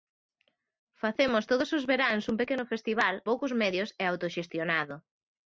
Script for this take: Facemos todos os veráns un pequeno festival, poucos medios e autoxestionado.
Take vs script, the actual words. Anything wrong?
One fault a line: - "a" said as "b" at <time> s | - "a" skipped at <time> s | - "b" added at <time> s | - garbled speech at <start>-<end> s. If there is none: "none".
none